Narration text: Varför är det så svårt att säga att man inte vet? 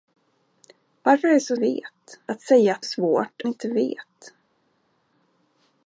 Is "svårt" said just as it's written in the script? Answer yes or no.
no